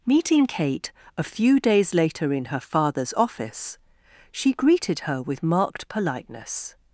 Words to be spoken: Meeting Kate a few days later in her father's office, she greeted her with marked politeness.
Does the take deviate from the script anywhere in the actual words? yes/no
no